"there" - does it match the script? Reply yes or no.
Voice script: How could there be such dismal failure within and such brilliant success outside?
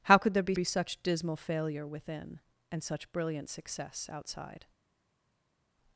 yes